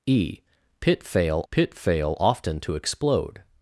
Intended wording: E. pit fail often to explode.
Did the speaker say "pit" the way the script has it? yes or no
yes